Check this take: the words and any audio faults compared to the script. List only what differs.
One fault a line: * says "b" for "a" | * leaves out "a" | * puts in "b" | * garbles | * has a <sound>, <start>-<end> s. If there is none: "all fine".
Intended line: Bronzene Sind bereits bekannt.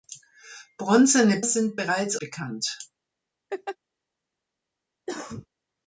* has a laugh, 3.5-3.8 s
* has a cough, 5.1-5.5 s